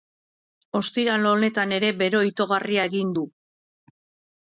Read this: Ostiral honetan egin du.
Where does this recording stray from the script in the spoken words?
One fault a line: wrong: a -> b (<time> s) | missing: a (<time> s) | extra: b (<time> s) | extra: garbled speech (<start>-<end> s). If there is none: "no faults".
extra: ere bero itogarria (1.8 s)